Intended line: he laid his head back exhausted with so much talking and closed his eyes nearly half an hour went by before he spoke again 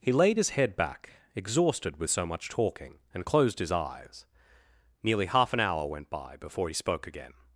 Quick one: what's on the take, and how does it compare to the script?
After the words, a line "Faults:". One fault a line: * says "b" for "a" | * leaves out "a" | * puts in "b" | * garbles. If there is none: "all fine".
he laid his head back exhausted with so much talking and closed his eyes nearly half an hour went by before he spoke again
Faults:
all fine